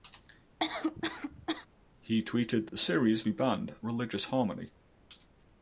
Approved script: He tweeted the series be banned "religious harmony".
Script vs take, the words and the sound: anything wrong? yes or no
yes